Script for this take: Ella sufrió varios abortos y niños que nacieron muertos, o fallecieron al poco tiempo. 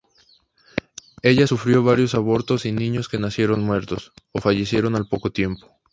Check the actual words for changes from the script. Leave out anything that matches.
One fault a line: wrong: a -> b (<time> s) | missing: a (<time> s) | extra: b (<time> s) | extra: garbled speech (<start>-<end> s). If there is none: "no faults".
no faults